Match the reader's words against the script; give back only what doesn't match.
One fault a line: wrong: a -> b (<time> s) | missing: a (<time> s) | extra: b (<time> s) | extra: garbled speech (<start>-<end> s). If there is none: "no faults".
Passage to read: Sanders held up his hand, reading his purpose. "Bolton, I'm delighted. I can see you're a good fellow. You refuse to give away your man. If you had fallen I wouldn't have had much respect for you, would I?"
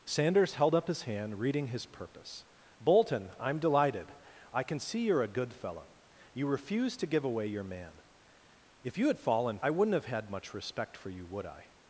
no faults